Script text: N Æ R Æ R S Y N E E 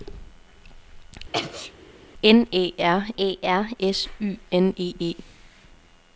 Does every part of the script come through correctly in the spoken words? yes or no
yes